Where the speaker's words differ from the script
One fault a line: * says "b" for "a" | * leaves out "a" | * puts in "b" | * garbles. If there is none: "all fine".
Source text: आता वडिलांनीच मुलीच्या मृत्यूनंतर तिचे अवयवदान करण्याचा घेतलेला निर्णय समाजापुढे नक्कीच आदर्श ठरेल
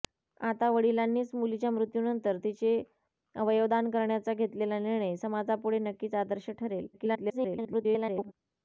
* garbles